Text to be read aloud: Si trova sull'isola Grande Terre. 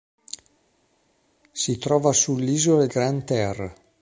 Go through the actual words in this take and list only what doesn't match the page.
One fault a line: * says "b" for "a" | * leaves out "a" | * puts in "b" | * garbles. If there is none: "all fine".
all fine